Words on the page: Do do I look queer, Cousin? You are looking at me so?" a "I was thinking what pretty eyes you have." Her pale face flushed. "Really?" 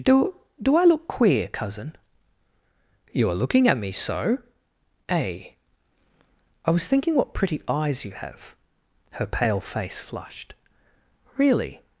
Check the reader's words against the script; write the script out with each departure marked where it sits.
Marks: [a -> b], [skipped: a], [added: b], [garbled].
Do do I look queer, Cousin? You are looking at me so?" a "I was thinking what pretty eyes you have." Her pale face flushed. "Really?"